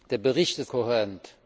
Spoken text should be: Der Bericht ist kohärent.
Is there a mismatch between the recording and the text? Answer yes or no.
no